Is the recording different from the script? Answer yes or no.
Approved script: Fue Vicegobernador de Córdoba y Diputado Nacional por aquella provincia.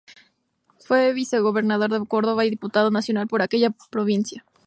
no